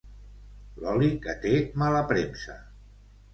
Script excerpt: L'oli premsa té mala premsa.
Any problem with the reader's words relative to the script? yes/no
yes